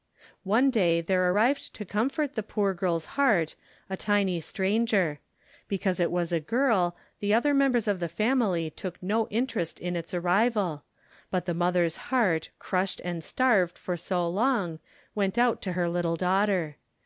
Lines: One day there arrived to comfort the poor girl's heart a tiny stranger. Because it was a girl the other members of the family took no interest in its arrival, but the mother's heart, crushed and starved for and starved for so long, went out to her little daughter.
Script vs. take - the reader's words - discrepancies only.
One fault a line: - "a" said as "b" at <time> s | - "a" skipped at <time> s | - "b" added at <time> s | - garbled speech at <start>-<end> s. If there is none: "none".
- "and starved for" skipped at 14.0 s